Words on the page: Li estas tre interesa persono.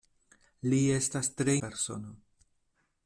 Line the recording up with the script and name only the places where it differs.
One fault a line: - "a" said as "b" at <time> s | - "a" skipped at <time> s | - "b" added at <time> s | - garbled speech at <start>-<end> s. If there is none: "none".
- "interesa" skipped at 1.6 s